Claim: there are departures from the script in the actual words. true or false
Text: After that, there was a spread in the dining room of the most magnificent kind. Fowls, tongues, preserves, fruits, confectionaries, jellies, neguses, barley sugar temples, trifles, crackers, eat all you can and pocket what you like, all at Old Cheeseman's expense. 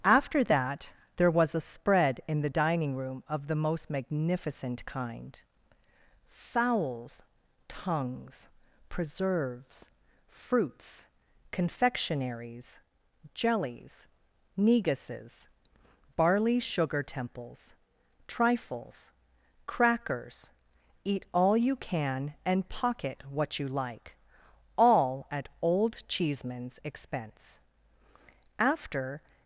true